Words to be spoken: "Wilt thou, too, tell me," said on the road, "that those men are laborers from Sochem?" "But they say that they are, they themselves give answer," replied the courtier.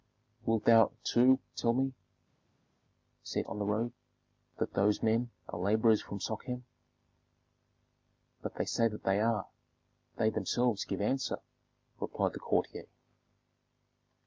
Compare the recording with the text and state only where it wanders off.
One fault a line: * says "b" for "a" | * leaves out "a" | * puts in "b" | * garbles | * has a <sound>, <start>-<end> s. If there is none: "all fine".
all fine